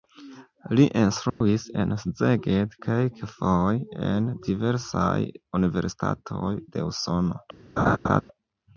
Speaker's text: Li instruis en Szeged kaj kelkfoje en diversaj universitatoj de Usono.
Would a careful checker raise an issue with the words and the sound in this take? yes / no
yes